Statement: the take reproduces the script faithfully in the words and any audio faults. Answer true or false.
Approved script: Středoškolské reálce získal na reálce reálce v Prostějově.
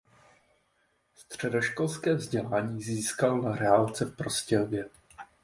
false